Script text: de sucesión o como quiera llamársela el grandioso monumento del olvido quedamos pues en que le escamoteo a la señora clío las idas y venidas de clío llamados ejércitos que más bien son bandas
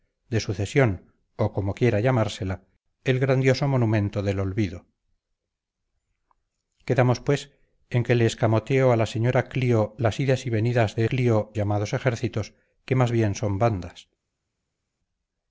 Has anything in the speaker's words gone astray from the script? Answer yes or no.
no